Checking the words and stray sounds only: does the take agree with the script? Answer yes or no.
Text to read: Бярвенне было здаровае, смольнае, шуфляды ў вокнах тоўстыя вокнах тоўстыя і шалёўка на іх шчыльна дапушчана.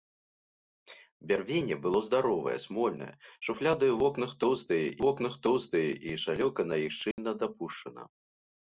no